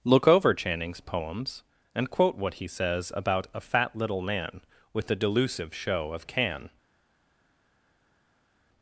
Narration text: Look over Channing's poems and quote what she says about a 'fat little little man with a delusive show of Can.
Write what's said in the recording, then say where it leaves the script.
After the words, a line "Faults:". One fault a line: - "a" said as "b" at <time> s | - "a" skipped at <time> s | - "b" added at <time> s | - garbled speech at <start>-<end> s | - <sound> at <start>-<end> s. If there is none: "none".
Look over Channing's poems and quote what he says about a 'fat little man with a delusive show of Can.
Faults:
- "she" said as "he" at 2.5 s
- "little" skipped at 4.2 s